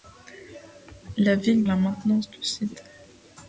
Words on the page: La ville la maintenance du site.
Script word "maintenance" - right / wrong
right